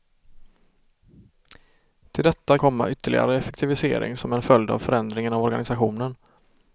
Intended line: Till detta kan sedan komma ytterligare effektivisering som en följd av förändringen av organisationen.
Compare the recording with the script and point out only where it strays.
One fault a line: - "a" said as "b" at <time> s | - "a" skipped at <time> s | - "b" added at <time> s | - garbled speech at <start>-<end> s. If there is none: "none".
- "kan sedan" skipped at 2.6 s